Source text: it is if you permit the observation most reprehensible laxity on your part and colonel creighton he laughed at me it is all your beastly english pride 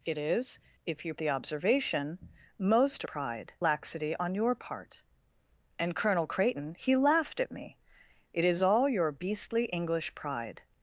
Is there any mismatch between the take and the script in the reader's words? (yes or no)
yes